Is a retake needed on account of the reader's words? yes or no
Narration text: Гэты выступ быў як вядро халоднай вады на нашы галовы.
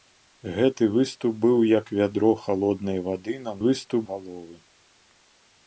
yes